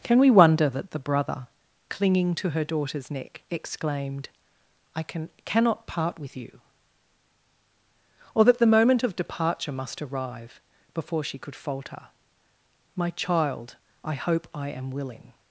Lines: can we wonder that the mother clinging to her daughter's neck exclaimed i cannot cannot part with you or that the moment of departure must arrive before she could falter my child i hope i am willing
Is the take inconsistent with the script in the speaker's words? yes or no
yes